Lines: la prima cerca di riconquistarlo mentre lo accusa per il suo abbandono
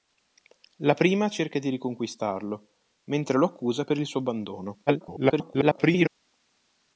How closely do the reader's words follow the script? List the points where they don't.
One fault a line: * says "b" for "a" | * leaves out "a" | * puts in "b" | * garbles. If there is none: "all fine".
* garbles